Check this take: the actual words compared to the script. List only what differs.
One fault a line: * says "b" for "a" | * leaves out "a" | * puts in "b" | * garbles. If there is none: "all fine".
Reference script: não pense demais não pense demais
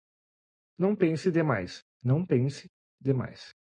all fine